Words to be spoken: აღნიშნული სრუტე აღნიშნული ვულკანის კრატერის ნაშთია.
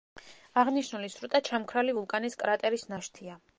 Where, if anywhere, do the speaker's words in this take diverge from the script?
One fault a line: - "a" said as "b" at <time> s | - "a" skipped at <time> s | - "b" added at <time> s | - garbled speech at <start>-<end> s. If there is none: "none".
- "აღნიშნული" said as "ჩამქრალი" at 1.5 s